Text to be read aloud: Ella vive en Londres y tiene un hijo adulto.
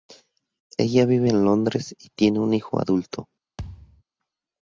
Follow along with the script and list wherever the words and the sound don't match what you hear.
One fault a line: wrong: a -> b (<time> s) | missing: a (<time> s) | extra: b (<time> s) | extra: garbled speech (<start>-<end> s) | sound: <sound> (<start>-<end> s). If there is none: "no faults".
sound: thud (3.6-4.0 s)